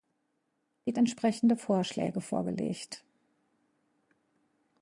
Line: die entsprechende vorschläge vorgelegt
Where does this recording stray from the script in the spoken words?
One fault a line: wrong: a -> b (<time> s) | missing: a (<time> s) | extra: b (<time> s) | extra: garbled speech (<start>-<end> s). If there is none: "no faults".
no faults